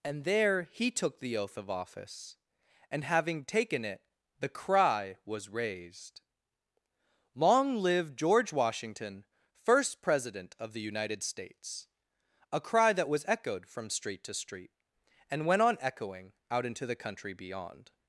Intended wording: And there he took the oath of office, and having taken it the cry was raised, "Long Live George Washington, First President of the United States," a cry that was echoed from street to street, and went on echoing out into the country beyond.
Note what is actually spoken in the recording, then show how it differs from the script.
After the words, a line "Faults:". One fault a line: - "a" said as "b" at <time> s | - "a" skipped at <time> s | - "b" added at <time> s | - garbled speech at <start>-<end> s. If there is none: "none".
And there he took the oath of office, and having taken it the cry was raised, "Long Live George Washington, First President of the United States," a cry that was echoed from street to street, and went on echoing out into the country beyond.
Faults:
none